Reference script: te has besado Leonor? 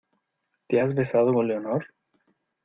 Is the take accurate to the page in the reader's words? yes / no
no